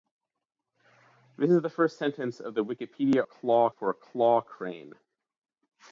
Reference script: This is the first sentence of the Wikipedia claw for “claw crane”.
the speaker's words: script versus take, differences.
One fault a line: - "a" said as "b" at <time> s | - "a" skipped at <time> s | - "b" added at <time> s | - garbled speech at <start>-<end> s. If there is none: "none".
none